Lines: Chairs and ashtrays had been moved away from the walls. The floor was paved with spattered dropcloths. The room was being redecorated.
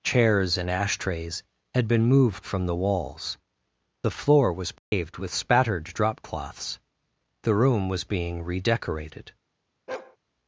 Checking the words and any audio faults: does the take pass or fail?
fail